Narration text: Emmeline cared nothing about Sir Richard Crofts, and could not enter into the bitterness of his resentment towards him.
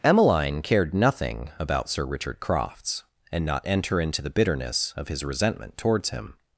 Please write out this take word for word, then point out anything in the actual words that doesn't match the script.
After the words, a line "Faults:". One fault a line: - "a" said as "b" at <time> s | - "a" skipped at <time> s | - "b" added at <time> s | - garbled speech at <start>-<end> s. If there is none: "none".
Emmeline cared nothing about Sir Richard Crofts, and not enter into the bitterness of his resentment towards him.
Faults:
- "could" skipped at 3.5 s